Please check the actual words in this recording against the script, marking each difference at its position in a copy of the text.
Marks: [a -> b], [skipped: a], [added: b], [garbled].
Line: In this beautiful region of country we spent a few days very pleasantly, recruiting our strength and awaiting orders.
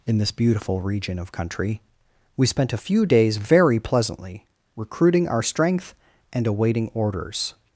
In this beautiful region of country we spent a few days very pleasantly, recruiting our strength and awaiting orders.